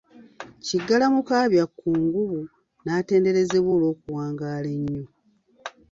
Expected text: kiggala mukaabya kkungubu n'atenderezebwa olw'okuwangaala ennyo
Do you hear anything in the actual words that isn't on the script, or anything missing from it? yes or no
no